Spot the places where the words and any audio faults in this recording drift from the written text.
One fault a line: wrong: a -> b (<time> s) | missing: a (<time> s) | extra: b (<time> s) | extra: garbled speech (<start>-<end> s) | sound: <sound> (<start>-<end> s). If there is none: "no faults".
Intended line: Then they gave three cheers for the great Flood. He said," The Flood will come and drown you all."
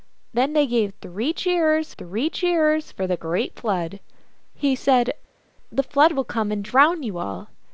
extra: three cheers (2.0 s)